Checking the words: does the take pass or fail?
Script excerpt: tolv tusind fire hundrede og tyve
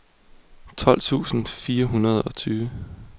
pass